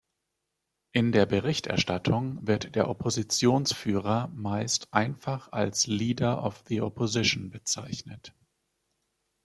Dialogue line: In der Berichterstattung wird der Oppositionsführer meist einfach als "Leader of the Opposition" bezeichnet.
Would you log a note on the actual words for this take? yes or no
no